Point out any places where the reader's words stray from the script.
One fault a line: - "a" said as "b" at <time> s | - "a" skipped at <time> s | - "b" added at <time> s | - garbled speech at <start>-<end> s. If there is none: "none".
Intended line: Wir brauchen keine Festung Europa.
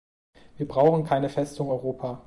none